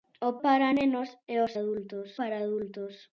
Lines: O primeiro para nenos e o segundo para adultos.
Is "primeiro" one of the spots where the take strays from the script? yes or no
yes